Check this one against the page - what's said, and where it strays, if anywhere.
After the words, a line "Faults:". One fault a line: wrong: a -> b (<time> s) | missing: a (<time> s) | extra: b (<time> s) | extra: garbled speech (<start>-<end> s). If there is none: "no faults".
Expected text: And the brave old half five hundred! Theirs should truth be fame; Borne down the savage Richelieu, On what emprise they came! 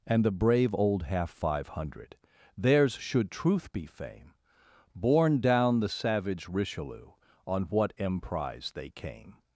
And the brave old half five hundred! Theirs should truth be fame; Borne down the savage Richelieu, On what emprise they came!
Faults:
no faults